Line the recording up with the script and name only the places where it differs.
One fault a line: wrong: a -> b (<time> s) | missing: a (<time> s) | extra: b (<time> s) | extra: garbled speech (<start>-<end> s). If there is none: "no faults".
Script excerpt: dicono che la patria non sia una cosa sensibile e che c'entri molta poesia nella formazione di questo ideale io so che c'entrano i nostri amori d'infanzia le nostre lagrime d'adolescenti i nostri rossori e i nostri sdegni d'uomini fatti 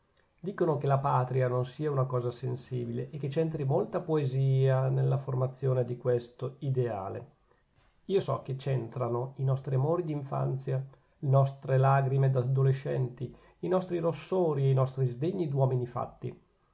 no faults